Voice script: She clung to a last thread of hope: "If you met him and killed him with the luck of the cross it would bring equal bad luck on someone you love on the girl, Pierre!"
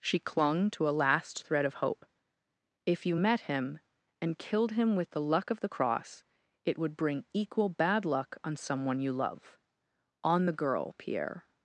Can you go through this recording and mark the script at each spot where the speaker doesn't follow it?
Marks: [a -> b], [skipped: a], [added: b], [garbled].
She clung to a last thread of hope: "If you met him and killed him with the luck of the cross it would bring equal bad luck on someone you love on the girl, Pierre!"